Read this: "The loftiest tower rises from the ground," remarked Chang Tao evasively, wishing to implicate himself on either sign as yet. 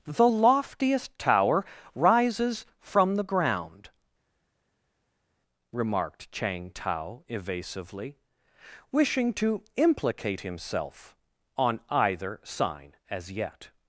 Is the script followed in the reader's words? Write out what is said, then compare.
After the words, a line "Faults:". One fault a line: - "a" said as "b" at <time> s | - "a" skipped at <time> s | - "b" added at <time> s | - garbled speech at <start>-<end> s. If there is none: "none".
"The loftiest tower rises from the ground," remarked Chang Tao evasively, wishing to implicate himself on either sign as yet.
Faults:
none